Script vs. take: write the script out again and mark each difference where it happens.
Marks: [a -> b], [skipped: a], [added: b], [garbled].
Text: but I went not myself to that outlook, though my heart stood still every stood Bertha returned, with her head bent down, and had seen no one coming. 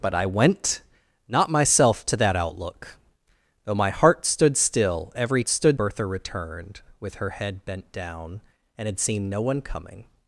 but I went not myself to that outlook, though my heart stood still every stood Bertha returned, with her head bent down, and had seen no one coming.